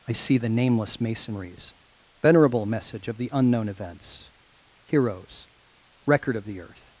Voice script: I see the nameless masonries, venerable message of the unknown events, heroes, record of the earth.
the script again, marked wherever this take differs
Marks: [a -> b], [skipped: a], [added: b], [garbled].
I see the nameless masonries, venerable message of the unknown events, heroes, record of the earth.